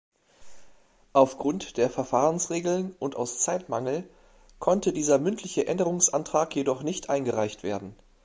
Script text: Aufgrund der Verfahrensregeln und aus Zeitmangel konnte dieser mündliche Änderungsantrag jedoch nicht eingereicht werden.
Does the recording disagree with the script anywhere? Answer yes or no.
no